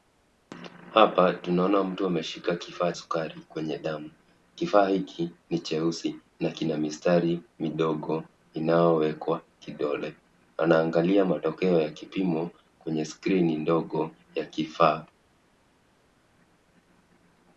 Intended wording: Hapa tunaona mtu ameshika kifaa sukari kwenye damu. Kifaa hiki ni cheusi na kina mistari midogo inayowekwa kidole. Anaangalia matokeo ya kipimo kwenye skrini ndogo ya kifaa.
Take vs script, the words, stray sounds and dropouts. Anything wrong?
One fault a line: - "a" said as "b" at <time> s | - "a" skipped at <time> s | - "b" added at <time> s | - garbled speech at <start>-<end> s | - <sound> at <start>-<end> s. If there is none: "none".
none